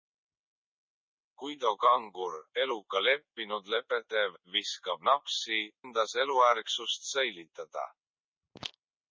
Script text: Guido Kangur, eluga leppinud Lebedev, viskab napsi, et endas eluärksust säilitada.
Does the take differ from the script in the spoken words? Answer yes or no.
yes